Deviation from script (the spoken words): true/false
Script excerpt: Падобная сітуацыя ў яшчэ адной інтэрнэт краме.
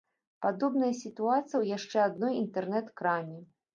false